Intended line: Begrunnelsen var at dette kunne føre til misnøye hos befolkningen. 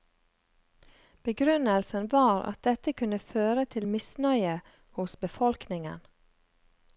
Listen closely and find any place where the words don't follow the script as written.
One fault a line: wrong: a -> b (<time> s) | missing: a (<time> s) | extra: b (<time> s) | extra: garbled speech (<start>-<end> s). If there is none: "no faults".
no faults